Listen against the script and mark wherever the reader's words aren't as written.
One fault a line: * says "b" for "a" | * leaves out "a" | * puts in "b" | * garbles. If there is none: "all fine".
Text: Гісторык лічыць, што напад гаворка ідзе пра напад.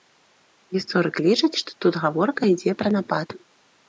* says "тут" for "напад"